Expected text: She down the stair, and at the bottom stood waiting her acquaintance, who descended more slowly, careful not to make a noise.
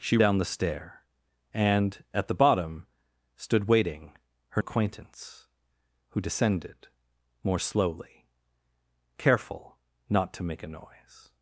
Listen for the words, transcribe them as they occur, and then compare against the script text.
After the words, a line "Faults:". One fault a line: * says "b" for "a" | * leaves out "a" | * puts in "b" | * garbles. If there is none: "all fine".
She down the stair, and at the bottom stood waiting her acquaintance, who descended more slowly, careful not to make a noise.
Faults:
all fine